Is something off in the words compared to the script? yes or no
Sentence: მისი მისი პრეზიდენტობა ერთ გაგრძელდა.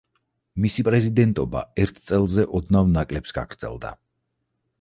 yes